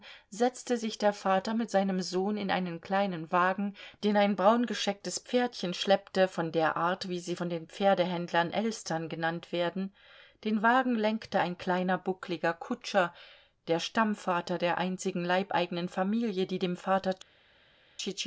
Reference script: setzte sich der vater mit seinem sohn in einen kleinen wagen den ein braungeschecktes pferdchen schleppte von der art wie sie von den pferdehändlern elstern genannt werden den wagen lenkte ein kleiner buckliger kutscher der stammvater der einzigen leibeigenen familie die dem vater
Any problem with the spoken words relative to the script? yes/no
no